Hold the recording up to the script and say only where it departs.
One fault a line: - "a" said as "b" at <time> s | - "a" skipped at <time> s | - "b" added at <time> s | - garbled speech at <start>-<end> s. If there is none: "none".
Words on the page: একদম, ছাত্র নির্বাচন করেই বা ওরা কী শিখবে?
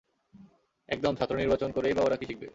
none